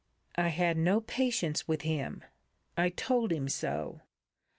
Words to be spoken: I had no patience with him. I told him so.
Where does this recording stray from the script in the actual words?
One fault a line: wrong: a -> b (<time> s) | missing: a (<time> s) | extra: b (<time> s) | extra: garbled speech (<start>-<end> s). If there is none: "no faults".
no faults